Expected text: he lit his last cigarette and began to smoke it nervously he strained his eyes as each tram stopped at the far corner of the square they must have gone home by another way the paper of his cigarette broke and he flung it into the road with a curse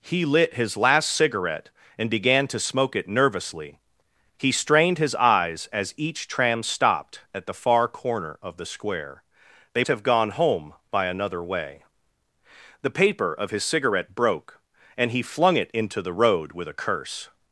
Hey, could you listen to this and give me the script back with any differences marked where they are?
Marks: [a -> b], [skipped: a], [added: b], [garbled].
he lit his last cigarette and began to smoke it nervously he strained his eyes as each tram stopped at the far corner of the square they [skipped: must] have gone home by another way the paper of his cigarette broke and he flung it into the road with a curse